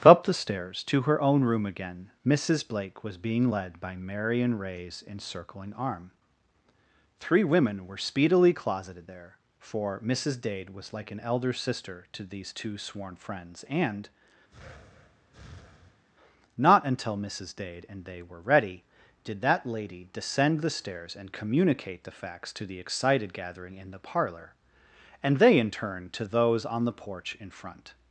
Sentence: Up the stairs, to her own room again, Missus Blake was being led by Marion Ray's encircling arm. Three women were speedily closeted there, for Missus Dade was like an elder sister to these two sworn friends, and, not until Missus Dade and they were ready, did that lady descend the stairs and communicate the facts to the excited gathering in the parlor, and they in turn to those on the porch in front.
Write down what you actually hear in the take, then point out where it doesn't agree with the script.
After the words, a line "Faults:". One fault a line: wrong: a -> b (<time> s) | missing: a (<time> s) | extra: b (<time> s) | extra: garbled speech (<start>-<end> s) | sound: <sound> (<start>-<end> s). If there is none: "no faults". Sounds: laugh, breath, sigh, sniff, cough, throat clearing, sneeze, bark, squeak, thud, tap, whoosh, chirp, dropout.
Up the stairs, to her own room again, Missus Blake was being led by Marion Ray's encircling arm. Three women were speedily closeted there, for Missus Dade was like an elder sister to these two sworn friends, and, not until Missus Dade and they were ready, did that lady descend the stairs and communicate the facts to the excited gathering in the parlor, and they in turn to those on the porch in front.
Faults:
sound: breath (14.5-16.0 s)